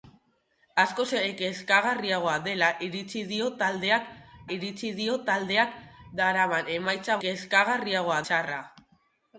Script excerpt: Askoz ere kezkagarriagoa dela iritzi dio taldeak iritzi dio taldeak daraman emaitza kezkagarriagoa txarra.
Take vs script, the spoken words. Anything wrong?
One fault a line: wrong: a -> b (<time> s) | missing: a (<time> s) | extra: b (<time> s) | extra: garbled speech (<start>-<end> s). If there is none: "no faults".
no faults